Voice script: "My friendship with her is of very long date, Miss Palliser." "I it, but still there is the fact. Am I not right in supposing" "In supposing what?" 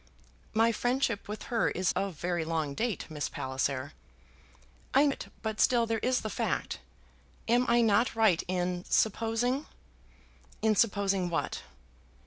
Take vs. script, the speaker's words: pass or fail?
pass